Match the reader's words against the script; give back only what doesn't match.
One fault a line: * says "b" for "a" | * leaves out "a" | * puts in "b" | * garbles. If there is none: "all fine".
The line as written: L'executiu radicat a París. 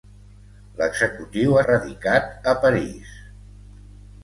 all fine